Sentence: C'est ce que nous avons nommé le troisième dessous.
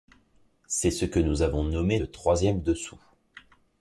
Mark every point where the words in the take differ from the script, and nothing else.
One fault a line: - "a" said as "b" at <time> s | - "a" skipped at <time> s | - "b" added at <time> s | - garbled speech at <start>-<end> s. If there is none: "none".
none